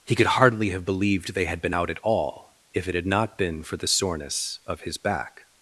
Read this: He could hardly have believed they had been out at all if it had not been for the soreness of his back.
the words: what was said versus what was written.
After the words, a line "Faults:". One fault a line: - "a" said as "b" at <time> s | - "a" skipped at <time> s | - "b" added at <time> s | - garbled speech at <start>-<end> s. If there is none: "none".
He could hardly have believed they had been out at all if it had not been for the soreness of his back.
Faults:
none